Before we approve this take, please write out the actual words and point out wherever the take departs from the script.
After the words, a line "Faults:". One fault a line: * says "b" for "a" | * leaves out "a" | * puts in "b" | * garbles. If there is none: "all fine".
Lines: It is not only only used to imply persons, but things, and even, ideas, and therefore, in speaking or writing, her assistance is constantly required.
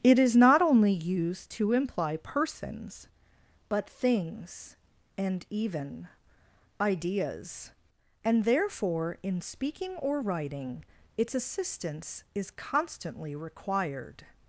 It is not only used to imply persons, but things, and even, ideas, and therefore, in speaking or writing, its assistance is constantly required.
Faults:
* leaves out "only"
* says "its" for "her"